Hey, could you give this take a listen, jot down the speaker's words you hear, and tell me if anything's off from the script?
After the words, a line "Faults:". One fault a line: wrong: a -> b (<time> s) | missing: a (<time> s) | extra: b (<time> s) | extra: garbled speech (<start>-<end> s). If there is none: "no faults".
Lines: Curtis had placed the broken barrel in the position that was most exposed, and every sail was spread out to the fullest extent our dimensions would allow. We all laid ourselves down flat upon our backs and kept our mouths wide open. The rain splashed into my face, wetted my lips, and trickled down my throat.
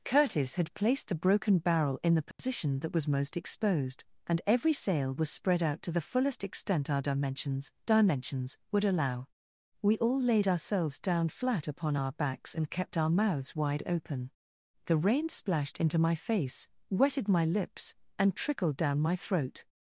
Curtis had placed the broken barrel in the position that was most exposed, and every sail was spread out to the fullest extent our dimensions dimensions would allow. We all laid ourselves down flat upon our backs and kept our mouths wide open. The rain splashed into my face, wetted my lips, and trickled down my throat.
Faults:
extra: dimensions (7.8 s)